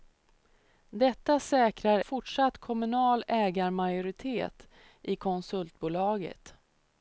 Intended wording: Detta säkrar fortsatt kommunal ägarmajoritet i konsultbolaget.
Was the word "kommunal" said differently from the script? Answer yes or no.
no